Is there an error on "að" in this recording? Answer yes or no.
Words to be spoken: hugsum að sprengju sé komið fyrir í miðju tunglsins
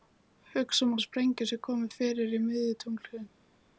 no